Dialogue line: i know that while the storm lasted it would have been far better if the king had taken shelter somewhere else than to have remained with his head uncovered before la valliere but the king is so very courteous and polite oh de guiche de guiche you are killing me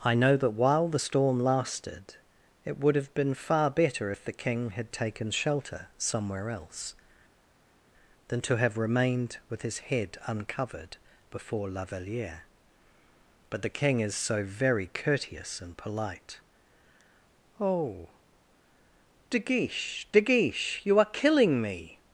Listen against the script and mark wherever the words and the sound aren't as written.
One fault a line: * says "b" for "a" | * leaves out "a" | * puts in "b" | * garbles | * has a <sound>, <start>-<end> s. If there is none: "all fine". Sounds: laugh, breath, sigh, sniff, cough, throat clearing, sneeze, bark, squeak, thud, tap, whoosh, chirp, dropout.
all fine